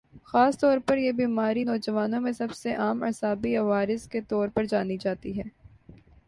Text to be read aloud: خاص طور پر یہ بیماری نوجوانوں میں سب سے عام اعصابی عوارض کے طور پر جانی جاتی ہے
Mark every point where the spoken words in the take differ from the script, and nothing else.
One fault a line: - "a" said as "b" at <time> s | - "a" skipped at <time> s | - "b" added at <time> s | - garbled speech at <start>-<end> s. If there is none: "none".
none